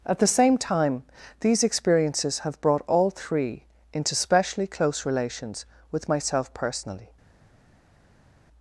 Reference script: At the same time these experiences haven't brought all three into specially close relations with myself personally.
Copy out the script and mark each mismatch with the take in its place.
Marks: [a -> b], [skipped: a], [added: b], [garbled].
At the same time these experiences [haven't -> have] brought all three into specially close relations with myself personally.